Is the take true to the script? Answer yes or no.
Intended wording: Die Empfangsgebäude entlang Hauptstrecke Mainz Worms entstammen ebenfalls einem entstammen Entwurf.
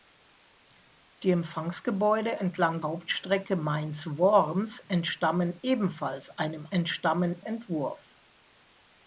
yes